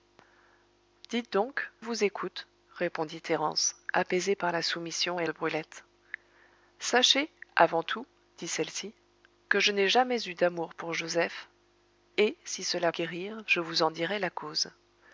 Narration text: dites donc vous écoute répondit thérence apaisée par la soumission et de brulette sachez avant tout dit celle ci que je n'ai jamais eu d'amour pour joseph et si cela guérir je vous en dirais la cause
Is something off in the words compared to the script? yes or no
no